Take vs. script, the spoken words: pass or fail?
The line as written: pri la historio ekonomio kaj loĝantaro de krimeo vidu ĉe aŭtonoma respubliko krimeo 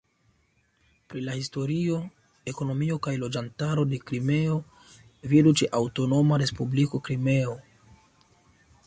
pass